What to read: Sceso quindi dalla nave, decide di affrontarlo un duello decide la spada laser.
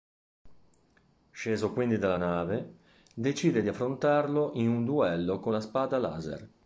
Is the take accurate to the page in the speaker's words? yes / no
no